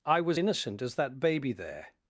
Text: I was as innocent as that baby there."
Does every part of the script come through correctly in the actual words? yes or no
no